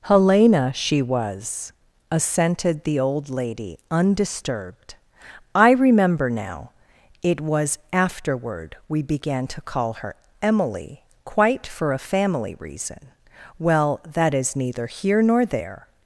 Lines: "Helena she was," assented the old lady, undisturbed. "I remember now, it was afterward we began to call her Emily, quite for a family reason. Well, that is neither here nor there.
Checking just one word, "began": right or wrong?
right